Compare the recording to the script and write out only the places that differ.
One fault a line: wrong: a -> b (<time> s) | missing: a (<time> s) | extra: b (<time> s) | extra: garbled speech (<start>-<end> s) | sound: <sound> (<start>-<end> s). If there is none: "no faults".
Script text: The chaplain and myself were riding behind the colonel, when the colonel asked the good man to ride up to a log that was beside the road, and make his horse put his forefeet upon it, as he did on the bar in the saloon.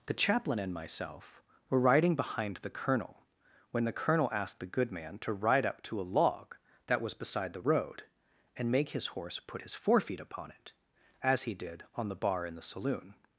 no faults